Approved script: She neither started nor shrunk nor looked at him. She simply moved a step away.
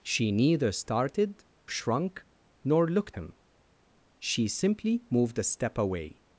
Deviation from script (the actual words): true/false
true